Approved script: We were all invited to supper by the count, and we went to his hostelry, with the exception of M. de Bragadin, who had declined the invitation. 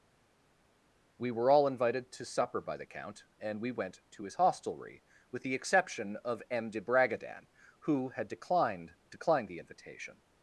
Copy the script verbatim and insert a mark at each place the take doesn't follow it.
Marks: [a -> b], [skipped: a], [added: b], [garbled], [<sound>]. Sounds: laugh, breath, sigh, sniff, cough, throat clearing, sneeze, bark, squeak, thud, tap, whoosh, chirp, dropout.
We were all invited to supper by the count, and we went to his hostelry, with the exception of M. de Bragadin, who had declined [added: declined] the invitation.